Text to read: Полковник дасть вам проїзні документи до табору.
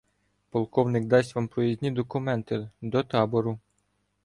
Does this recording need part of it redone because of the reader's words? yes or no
no